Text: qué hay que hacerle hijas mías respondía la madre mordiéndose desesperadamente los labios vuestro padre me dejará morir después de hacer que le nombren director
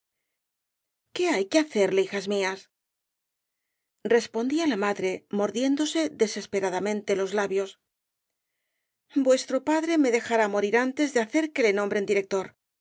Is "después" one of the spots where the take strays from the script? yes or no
yes